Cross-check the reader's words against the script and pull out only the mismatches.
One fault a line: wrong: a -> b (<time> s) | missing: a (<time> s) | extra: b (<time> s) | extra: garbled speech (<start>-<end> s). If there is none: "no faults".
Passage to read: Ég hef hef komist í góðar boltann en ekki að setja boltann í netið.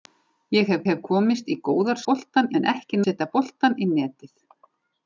no faults